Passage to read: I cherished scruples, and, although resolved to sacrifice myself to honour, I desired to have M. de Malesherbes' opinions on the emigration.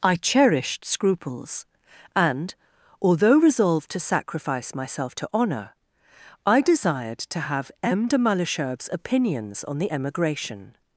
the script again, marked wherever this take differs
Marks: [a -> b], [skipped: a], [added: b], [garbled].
I cherished scruples, and, although resolved to sacrifice myself to honour, I desired to have M. de Malesherbes' opinions on the emigration.